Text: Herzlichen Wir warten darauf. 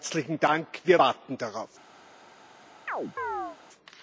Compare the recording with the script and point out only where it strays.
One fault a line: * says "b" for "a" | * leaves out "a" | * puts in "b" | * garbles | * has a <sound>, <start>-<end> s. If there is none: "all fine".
* puts in "Dank"
* has a chirp, 2.9-3.6 s